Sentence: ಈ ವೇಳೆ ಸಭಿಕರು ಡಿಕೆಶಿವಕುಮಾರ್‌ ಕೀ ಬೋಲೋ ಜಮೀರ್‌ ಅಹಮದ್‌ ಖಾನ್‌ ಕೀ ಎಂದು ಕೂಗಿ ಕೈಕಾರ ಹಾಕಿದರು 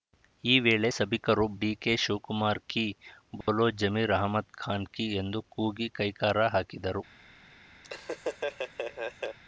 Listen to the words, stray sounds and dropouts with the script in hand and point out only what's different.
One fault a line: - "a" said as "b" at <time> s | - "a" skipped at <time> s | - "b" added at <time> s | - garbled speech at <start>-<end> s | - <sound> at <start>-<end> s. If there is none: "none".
- dropout at 3.4-3.5 s
- laugh at 7.8-9.4 s